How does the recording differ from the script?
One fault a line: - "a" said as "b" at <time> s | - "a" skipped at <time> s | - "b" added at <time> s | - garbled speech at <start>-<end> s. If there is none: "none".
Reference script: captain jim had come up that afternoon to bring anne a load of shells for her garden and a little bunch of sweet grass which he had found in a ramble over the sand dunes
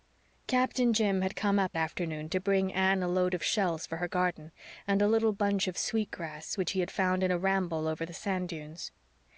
- "that" skipped at 1.8 s